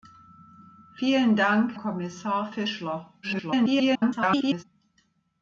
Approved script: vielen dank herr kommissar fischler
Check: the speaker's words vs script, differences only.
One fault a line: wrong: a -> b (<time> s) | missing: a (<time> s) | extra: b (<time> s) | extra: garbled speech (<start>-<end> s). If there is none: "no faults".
missing: herr (1.8 s)
extra: garbled speech (3.2-4.6 s)